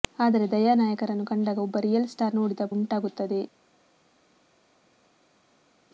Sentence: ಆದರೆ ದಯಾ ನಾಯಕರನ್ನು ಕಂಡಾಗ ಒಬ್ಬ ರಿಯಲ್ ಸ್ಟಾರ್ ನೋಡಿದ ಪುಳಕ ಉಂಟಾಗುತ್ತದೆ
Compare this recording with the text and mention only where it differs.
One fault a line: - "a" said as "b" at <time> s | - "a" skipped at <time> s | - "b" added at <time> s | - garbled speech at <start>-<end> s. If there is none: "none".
- "ಪುಳಕ" skipped at 2.6 s